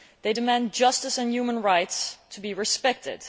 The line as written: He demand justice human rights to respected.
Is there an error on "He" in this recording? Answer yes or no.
yes